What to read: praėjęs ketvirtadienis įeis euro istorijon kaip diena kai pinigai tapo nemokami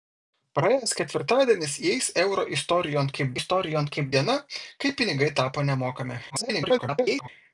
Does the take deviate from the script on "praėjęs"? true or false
false